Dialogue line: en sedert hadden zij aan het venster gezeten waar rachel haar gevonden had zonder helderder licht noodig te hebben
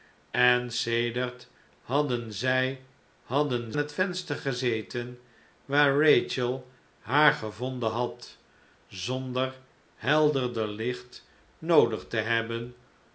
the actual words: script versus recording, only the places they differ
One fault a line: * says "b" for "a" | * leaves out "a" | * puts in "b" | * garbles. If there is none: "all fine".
* says "hadden" for "aan"